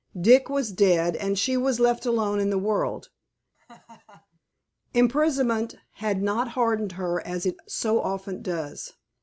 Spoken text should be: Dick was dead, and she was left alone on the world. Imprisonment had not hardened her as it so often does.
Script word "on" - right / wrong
wrong